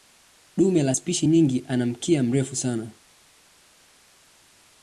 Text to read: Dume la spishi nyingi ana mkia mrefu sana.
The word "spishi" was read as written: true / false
true